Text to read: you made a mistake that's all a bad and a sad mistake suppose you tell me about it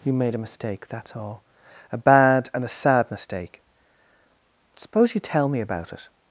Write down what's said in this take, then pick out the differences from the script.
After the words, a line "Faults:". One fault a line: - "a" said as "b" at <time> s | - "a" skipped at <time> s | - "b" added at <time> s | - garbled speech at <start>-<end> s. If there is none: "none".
you made a mistake that's all a bad and a sad mistake suppose you tell me about it
Faults:
none